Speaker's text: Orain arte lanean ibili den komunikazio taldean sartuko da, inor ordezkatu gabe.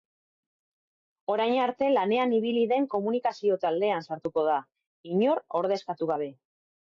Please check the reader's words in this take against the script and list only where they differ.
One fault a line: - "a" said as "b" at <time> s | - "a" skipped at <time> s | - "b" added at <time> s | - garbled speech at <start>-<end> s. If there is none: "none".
none